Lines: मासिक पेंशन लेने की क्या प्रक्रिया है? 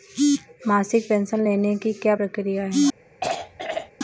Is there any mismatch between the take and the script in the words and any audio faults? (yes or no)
yes